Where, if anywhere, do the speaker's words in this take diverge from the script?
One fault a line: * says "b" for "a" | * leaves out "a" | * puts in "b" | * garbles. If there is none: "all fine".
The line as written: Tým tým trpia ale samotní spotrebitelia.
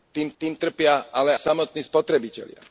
all fine